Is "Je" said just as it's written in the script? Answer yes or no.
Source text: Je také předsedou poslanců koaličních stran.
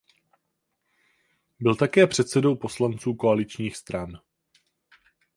no